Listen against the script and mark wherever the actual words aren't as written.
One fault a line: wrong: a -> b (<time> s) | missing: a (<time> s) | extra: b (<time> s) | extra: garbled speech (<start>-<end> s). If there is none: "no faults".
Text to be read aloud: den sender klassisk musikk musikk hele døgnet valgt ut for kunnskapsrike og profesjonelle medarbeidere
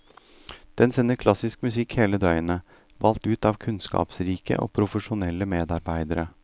missing: musikk (2.0 s)
wrong: for -> av (3.5 s)